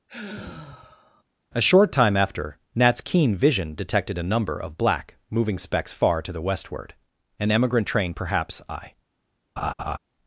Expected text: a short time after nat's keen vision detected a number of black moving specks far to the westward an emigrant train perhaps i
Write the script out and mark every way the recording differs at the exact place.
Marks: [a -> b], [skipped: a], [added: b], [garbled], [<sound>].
[sigh] a short time after nat's keen vision detected a number of black moving specks far to the westward an emigrant train perhaps i [laugh]